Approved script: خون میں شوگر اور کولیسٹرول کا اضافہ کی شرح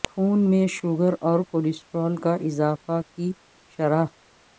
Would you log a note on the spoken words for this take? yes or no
no